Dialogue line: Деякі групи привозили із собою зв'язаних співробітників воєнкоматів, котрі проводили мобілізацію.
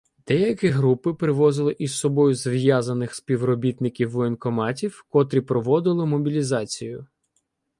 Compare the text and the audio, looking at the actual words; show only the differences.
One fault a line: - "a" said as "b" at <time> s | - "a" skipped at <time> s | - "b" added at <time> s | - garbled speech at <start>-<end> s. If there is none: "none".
none